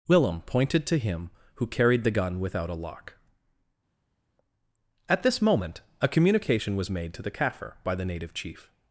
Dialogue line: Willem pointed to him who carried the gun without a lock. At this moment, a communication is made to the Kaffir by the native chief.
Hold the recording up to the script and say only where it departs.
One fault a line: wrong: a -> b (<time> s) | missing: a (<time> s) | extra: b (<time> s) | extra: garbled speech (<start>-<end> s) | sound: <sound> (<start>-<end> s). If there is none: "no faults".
wrong: is -> was (6.8 s)